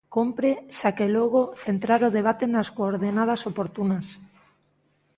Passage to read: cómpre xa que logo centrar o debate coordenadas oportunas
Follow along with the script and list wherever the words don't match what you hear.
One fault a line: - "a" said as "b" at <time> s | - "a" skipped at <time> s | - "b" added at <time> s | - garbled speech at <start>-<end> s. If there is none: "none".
- "nas" added at 2.5 s